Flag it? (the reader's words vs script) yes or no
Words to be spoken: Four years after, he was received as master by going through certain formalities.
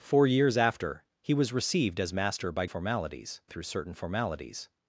yes